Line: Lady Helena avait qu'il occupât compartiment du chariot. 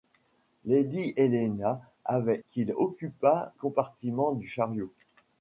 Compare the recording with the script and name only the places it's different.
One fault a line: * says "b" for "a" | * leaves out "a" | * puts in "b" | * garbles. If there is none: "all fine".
all fine